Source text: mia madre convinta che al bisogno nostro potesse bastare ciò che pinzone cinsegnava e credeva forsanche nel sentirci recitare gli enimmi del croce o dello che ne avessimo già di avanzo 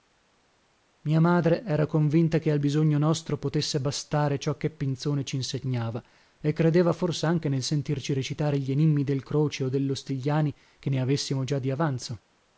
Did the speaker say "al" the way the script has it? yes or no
yes